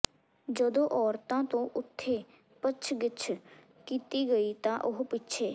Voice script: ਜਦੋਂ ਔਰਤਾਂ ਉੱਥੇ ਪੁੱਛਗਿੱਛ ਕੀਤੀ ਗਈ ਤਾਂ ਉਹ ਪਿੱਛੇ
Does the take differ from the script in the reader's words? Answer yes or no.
yes